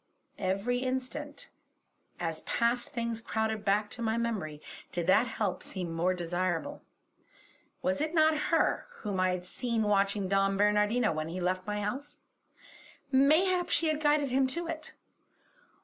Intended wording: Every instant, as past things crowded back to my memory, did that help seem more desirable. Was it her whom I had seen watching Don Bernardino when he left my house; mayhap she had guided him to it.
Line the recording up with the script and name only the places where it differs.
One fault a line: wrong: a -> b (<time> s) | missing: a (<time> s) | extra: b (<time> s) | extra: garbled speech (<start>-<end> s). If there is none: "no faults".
extra: not (8.1 s)